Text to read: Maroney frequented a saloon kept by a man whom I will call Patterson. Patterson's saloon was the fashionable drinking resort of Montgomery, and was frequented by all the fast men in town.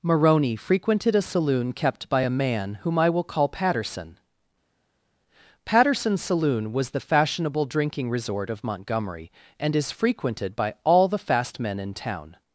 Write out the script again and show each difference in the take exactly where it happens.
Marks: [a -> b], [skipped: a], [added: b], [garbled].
Maroney frequented a saloon kept by a man whom I will call Patterson. Patterson's saloon was the fashionable drinking resort of Montgomery, and [was -> is] frequented by all the fast men in town.